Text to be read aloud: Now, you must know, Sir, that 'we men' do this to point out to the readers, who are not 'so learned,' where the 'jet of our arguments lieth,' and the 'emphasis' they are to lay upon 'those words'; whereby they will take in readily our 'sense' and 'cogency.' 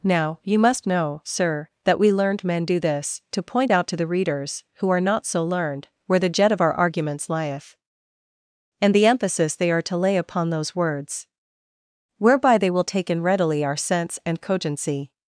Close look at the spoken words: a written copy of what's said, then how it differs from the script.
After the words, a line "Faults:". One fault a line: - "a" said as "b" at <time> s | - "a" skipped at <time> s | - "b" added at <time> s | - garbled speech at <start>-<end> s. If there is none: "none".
Now, you must know, Sir, that 'we learned men' do this to point out to the readers, who are not 'so learned,' where the 'jet of our arguments lieth,' and the 'emphasis' they are to lay upon 'those words'; whereby they will take in readily our 'sense' and 'cogency.'
Faults:
- "learned" added at 2.1 s